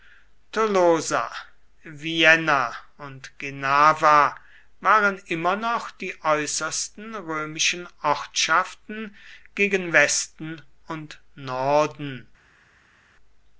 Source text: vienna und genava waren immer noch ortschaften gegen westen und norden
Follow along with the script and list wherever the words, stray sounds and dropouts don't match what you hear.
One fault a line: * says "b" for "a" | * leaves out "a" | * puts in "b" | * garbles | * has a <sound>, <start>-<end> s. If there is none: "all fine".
* puts in "die äußersten römischen"